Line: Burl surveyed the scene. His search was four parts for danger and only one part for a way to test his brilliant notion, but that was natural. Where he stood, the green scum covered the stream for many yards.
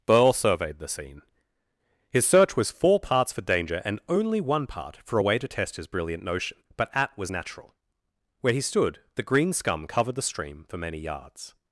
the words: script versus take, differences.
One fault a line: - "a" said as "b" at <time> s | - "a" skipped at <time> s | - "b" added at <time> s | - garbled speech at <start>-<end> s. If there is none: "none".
- "that" said as "at" at 6.9 s